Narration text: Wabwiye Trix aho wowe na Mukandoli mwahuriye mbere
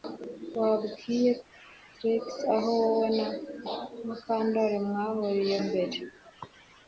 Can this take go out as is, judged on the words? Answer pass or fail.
pass